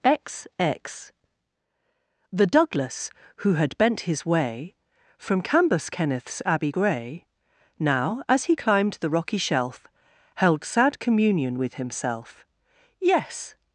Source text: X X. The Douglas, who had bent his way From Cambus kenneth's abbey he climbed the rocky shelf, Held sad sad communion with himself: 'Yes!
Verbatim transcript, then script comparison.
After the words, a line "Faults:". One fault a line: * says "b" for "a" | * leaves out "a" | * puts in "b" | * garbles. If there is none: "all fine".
X X. The Douglas, who had bent his way From Cambus kenneth's abbey gray, Now, as he climbed the rocky shelf, Held sad communion with himself: 'Yes!
Faults:
* puts in "gray Now as"
* leaves out "sad"